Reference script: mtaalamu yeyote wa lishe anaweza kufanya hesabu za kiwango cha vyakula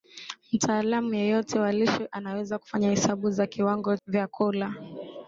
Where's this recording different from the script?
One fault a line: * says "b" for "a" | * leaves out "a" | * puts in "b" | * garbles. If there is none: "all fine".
* leaves out "cha"